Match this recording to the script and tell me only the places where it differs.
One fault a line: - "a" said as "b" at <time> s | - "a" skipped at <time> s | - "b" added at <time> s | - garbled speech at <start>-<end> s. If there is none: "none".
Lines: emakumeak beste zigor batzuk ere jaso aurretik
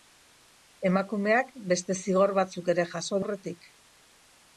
none